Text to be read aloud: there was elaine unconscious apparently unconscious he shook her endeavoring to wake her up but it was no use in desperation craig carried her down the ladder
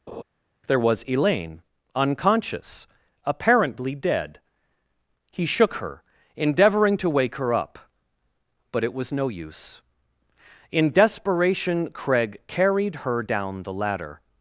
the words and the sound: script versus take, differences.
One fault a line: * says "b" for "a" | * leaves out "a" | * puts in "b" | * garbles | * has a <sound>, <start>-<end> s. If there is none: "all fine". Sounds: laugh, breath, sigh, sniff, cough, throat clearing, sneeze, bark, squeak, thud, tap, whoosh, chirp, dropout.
* has a laugh, 0.1-0.2 s
* says "dead" for "unconscious"